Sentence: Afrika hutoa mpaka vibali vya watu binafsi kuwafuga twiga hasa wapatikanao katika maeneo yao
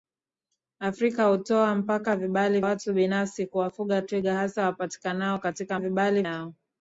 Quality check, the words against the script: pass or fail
fail